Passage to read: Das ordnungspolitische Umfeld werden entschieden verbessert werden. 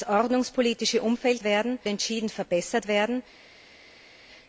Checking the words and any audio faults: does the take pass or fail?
pass